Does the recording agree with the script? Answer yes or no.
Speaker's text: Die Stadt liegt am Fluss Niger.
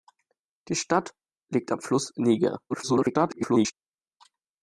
no